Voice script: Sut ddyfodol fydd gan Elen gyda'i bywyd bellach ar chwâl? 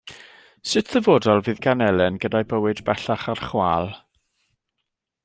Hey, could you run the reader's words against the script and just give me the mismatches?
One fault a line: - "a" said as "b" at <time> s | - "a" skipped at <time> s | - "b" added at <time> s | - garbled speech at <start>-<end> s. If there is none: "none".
none